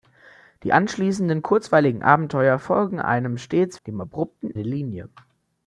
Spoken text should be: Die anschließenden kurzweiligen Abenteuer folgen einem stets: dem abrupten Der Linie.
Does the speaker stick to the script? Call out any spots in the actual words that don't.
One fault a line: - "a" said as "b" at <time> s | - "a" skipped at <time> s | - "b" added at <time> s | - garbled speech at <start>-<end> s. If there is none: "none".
none